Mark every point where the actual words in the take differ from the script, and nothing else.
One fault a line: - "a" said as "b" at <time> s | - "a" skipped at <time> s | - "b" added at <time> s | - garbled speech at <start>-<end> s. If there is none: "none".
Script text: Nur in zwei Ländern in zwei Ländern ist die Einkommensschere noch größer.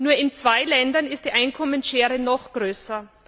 - "in zwei Ländern" skipped at 1.1 s